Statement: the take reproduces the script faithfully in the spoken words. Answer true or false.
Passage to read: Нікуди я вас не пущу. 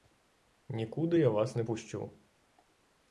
true